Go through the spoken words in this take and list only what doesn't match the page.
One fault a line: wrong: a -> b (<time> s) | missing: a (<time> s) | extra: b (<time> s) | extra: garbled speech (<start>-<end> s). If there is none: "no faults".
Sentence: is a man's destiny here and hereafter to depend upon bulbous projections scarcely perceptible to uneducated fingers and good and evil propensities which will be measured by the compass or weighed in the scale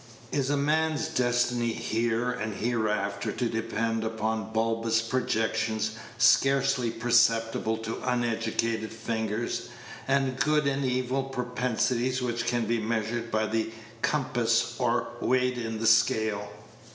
wrong: will -> can (12.5 s)